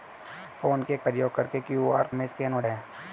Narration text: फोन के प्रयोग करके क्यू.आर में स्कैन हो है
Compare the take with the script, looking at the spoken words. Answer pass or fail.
pass